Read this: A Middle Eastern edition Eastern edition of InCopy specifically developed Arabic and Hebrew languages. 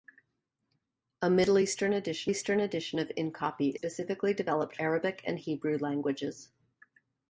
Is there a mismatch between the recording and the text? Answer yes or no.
no